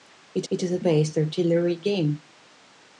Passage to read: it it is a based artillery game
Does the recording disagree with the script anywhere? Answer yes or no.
no